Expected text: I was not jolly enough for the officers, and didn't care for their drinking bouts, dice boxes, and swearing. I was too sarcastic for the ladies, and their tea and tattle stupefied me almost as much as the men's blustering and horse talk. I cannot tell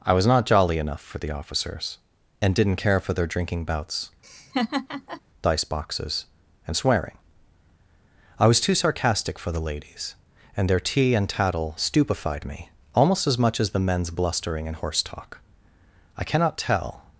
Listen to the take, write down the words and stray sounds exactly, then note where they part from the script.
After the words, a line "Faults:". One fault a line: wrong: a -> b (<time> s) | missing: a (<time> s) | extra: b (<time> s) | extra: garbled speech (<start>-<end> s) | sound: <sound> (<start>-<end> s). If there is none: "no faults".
I was not jolly enough for the officers, and didn't care for their drinking bouts, dice boxes, and swearing. I was too sarcastic for the ladies, and their tea and tattle stupefied me almost as much as the men's blustering and horse talk. I cannot tell
Faults:
sound: laugh (4.2-5.2 s)